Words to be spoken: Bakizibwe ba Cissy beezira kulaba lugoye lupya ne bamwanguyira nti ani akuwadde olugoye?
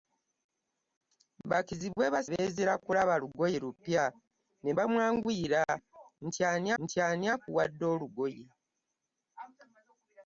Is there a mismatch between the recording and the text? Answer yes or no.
yes